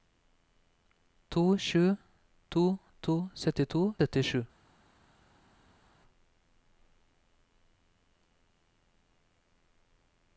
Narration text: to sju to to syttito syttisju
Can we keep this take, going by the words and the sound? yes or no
yes